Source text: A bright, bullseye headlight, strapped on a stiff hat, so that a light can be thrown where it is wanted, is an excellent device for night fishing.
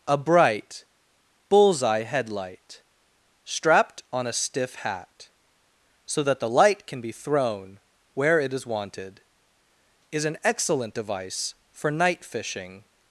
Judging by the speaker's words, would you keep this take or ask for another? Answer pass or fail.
fail